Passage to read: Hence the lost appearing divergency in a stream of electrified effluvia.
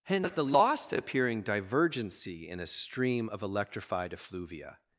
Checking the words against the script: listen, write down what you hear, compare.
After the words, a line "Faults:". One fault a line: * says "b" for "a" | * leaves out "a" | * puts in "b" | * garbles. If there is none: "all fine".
Hence the lost appearing divergency in a stream of electrified effluvia.
Faults:
all fine